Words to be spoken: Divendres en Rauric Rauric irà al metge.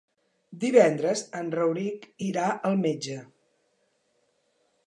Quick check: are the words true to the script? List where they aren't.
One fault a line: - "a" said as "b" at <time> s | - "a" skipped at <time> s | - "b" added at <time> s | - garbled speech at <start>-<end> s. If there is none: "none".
- "Rauric" skipped at 2.1 s